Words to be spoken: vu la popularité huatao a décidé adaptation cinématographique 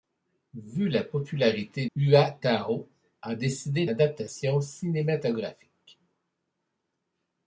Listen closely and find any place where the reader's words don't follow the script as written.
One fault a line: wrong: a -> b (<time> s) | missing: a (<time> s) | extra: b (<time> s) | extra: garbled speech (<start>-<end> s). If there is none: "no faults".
no faults